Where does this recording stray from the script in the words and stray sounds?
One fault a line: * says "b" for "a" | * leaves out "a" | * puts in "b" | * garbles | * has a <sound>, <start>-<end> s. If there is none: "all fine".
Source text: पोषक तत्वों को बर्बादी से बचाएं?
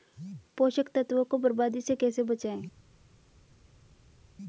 * puts in "कैसे"